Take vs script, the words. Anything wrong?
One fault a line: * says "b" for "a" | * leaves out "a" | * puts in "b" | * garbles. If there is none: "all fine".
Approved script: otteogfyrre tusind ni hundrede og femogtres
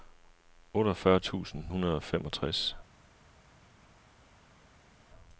* leaves out "ni"